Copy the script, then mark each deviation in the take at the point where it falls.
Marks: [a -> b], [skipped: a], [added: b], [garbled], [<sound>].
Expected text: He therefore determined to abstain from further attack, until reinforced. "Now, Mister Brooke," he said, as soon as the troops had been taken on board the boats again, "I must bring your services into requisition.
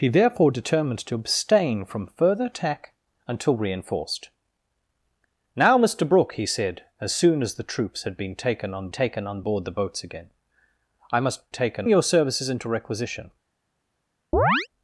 He therefore determined to abstain from further attack, until reinforced. "Now, Mister Brooke," he said, as soon as the troops had been taken on [added: taken on] board the boats again, "I must [bring -> taken] your services into requisition. [chirp]